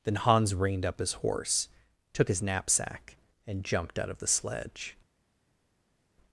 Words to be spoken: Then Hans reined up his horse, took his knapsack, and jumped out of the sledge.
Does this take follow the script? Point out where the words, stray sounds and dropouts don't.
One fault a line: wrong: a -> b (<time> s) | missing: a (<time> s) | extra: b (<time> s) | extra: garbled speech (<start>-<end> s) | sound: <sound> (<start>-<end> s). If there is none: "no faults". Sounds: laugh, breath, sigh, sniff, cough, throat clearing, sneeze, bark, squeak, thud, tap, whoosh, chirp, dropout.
no faults